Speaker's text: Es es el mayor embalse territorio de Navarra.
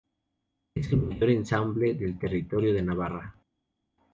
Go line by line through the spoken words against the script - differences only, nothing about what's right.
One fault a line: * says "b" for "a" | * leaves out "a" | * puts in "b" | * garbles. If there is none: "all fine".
* leaves out "es"
* puts in "del"